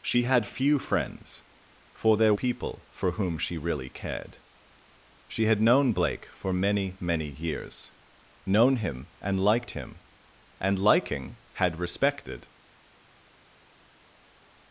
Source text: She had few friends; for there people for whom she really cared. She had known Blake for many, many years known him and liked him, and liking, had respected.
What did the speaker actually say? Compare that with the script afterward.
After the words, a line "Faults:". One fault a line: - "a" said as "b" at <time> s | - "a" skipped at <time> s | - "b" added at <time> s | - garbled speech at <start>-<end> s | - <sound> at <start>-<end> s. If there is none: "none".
She had few friends; for there people for whom she really cared. She had known Blake for many, many years known him and liked him, and liking, had respected.
Faults:
none